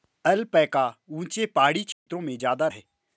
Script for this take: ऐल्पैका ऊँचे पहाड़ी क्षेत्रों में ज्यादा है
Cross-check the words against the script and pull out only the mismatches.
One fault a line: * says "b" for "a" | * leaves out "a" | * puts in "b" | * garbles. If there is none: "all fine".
all fine